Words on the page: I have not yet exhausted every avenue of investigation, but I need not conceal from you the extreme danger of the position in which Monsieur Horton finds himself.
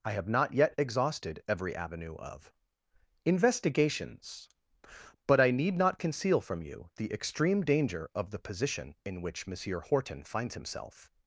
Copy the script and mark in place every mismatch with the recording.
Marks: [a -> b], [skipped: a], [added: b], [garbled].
I have not yet exhausted every avenue of [investigation, -> investigations] but I need not conceal from you the extreme danger of the position in which Monsieur Horton finds himself.